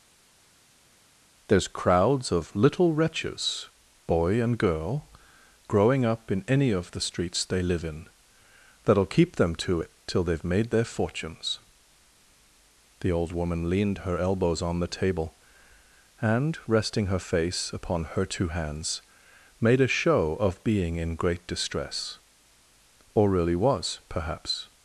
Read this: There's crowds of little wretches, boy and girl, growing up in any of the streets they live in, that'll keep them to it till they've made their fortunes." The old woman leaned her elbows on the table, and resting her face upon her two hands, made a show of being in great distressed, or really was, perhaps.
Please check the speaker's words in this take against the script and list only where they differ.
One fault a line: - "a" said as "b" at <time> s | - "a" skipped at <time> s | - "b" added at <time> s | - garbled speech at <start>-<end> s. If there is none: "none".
- "distressed" said as "distress" at 21.5 s